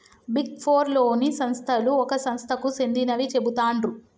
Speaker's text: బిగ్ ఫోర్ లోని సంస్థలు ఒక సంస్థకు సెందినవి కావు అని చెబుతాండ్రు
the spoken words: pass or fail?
fail